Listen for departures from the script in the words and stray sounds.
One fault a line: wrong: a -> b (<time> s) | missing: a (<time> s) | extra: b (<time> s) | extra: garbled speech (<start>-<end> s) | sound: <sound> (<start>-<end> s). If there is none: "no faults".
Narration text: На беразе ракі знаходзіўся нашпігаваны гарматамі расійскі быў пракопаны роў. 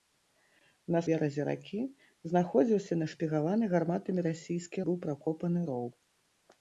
no faults